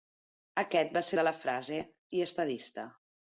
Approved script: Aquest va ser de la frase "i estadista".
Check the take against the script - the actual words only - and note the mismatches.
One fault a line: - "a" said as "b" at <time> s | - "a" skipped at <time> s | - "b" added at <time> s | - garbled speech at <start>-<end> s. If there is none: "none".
none